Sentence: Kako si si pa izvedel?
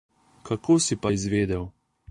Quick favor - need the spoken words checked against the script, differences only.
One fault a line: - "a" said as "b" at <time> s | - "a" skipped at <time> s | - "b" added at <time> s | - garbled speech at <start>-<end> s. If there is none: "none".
- "si" skipped at 0.9 s